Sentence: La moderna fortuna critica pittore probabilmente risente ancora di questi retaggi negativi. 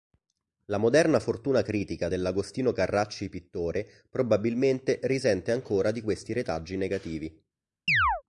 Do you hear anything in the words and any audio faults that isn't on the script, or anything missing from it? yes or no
yes